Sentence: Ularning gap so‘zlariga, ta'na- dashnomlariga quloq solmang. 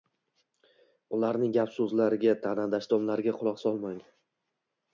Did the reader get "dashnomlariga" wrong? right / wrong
right